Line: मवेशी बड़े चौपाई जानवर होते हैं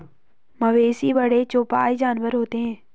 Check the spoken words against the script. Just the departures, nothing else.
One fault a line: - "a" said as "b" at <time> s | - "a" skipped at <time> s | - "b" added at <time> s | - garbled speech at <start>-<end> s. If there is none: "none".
none